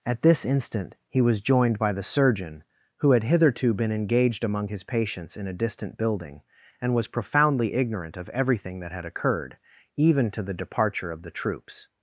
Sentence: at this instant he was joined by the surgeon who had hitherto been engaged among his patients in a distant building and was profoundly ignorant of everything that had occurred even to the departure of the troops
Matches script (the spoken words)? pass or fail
pass